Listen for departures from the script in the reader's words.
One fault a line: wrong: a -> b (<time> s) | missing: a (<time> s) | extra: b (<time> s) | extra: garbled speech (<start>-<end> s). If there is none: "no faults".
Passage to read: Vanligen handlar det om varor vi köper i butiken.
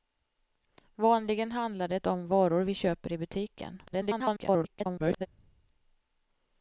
extra: garbled speech (3.9-5.3 s)